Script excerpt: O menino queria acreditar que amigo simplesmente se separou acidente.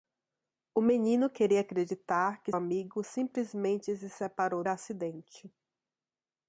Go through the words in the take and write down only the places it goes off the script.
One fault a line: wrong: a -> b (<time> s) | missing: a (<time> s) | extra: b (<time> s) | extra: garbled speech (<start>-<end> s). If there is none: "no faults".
no faults